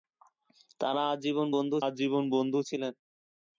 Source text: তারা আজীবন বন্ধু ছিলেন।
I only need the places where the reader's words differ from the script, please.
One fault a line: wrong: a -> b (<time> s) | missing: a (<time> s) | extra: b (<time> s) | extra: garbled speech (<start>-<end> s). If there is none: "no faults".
extra: আজীবন বন্ধু (1.9 s)